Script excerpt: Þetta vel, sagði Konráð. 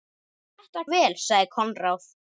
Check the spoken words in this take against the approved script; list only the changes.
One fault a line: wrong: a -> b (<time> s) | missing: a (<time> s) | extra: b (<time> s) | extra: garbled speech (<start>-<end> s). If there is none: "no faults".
no faults